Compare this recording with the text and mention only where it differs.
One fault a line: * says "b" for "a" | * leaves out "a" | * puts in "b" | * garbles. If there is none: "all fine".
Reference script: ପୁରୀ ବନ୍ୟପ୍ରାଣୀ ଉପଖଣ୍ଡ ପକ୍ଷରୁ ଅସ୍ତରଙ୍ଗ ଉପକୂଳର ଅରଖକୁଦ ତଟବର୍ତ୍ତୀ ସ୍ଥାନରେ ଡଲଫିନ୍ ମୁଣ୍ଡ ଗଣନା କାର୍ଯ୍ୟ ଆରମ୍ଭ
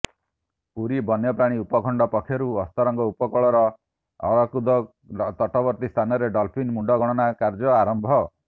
all fine